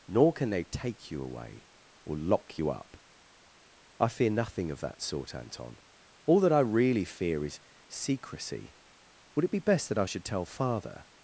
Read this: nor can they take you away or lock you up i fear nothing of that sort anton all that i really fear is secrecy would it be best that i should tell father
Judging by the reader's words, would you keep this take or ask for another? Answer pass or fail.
pass